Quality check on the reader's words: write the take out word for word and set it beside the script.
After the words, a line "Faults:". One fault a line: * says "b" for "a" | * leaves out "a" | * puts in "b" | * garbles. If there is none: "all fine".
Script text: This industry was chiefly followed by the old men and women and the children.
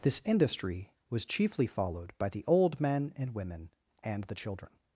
This industry was chiefly followed by the old men and women and the children.
Faults:
all fine